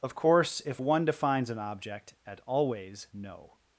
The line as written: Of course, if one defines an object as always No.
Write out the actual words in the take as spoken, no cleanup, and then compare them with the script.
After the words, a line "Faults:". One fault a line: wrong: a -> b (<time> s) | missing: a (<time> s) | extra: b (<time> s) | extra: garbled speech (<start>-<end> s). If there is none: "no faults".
Of course, if one defines an object at always No.
Faults:
wrong: as -> at (2.3 s)